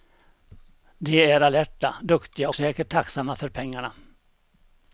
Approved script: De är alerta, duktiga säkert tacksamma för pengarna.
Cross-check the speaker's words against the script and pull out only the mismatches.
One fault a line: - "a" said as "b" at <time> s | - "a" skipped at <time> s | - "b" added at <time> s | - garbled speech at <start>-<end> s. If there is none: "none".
none